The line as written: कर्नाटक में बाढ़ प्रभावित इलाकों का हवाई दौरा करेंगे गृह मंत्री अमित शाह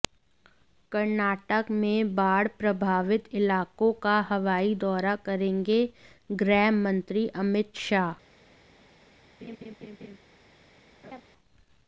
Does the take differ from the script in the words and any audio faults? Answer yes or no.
yes